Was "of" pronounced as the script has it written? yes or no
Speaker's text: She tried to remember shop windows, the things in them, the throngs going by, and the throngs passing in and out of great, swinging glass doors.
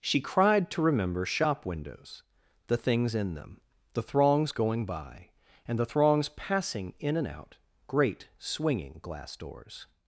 no